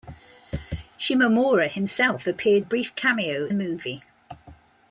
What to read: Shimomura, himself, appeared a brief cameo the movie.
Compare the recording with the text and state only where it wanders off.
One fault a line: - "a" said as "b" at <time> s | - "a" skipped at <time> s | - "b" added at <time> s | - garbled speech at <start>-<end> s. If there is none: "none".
none